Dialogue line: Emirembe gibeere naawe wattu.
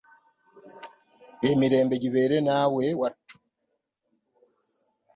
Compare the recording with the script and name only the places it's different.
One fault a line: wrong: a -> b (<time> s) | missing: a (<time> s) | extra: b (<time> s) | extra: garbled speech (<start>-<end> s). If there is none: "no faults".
no faults